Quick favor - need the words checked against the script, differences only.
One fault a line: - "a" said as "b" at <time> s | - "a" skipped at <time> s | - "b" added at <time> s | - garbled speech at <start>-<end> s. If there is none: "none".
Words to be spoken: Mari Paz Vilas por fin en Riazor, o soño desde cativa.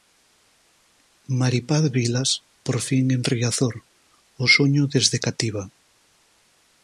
none